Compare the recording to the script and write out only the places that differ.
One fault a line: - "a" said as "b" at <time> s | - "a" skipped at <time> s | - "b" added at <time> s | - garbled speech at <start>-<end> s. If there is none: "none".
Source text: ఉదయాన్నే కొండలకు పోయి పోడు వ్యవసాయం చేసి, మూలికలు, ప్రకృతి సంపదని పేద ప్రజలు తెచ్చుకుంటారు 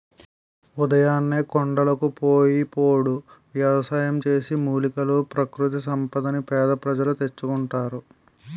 none